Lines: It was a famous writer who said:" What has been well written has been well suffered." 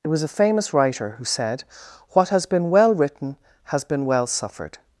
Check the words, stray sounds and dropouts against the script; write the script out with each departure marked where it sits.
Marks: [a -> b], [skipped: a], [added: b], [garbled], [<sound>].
It was a famous writer who said:" What has been well written has been well suffered."